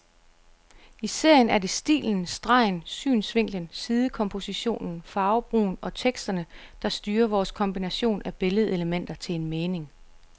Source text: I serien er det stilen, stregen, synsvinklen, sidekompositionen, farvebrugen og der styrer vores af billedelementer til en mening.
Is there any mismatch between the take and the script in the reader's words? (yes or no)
yes